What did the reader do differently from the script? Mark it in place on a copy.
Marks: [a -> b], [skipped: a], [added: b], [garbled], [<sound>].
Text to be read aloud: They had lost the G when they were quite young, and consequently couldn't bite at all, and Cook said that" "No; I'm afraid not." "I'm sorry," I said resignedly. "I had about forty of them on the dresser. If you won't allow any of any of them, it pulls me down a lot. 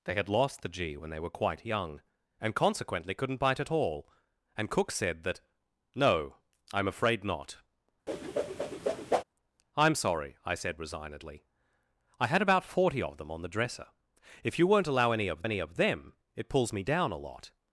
They had lost the G when they were quite young, and consequently couldn't bite at all, and Cook said that" "No; I'm afraid not." [whoosh] "I'm sorry," I said resignedly. "I had about forty of them on the dresser. If you won't allow any of any of them, it pulls me down a lot.